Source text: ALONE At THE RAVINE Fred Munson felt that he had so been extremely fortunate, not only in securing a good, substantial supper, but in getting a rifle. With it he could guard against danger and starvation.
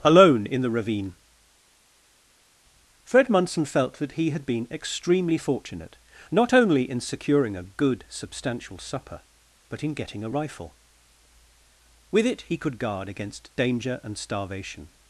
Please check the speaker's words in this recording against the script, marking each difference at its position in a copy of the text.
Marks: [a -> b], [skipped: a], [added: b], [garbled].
ALONE [At -> IN] THE RAVINE Fred Munson felt that he had [skipped: so] been extremely fortunate, not only in securing a good, substantial supper, but in getting a rifle. With it he could guard against danger and starvation.